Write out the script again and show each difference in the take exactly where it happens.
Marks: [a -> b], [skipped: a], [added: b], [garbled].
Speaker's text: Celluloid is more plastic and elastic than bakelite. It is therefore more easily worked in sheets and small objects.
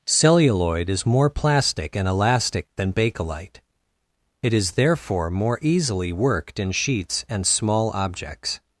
Celluloid is more plastic and elastic than bakelite. It is therefore more easily worked in sheets and small objects.